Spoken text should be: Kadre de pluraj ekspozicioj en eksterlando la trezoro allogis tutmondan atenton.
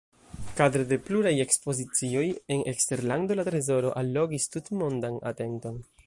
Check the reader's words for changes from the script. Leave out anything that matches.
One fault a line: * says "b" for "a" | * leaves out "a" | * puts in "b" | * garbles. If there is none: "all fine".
all fine